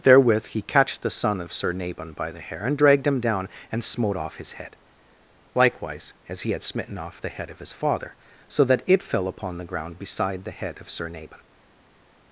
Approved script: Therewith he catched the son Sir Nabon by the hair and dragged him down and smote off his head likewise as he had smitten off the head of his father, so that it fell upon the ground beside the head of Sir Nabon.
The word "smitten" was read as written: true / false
true